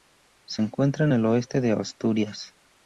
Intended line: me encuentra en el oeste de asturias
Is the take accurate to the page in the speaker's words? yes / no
no